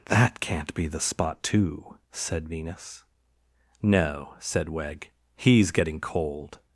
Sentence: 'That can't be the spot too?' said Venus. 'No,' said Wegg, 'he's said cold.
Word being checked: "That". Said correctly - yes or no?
yes